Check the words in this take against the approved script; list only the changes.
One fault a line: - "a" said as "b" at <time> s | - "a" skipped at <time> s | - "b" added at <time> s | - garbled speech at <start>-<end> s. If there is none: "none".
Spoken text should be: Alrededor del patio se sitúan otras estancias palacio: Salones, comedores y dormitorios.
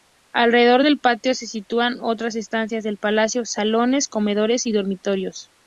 - "del" added at 2.8 s